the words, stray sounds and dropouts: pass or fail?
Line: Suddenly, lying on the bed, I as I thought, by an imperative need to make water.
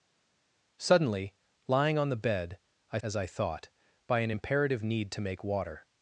pass